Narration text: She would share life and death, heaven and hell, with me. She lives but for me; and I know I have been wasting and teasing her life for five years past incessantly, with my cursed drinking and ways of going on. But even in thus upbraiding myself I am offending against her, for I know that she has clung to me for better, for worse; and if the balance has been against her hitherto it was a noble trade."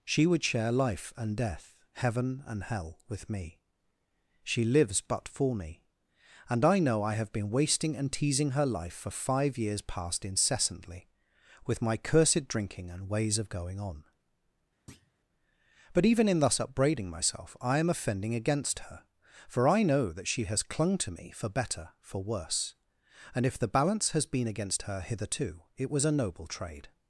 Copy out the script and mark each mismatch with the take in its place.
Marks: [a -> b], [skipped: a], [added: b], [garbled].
She would share life and death, heaven and hell, with me. She lives but for me; and I know I have been wasting and teasing her life for five years past incessantly, with my cursed drinking and ways of going on. But even in thus upbraiding myself I am offending against her, for I know that she has clung to me for better, for worse; and if the balance has been against her hitherto it was a noble trade."